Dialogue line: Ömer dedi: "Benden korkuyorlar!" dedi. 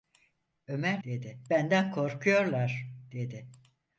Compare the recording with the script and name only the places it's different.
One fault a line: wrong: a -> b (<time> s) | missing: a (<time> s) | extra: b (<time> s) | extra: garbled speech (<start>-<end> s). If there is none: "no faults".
no faults